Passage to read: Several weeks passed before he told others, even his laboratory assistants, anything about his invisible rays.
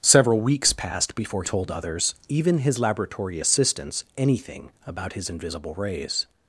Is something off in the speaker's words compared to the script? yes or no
yes